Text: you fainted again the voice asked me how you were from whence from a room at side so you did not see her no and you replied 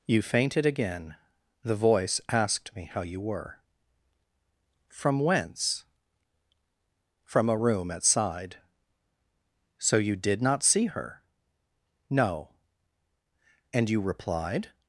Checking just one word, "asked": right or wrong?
right